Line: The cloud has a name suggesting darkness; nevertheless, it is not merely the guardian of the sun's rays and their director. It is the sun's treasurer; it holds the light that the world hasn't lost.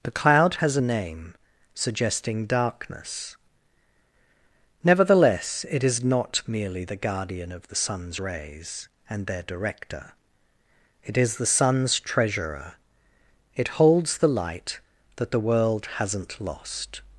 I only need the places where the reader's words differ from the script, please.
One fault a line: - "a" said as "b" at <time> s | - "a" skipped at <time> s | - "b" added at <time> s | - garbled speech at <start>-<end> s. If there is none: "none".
none